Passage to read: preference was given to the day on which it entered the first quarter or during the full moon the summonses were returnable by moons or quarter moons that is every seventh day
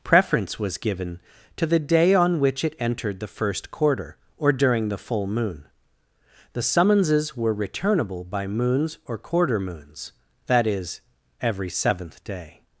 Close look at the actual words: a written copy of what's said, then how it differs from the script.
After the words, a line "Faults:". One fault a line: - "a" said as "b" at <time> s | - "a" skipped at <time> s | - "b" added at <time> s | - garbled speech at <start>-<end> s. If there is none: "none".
preference was given to the day on which it entered the first quarter or during the full moon the summonses were returnable by moons or quarter moons that is every seventh day
Faults:
none